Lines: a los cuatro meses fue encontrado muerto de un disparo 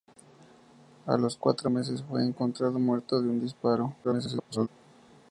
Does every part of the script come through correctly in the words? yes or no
no